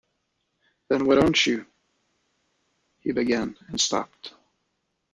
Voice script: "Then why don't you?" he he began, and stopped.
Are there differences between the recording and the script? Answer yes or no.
yes